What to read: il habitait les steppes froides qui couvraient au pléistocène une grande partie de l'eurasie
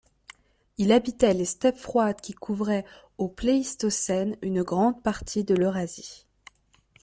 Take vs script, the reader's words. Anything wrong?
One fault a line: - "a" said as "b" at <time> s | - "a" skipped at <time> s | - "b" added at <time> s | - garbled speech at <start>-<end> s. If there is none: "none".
none